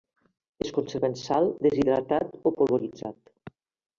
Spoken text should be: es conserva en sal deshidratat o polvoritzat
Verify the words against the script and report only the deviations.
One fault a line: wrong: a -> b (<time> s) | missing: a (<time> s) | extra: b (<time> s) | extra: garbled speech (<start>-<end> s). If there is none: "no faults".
no faults